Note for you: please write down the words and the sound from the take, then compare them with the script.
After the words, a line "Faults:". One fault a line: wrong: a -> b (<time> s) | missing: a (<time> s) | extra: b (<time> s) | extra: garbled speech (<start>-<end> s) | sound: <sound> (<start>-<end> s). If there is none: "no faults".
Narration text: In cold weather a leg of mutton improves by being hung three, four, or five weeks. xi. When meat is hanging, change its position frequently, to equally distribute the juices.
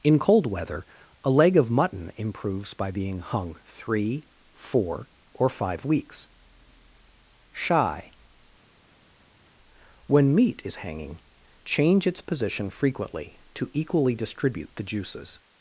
In cold weather a leg of mutton improves by being hung three, four, or five weeks. shy. When meat is hanging, change its position frequently, to equally distribute the juices.
Faults:
wrong: xi -> shy (7.5 s)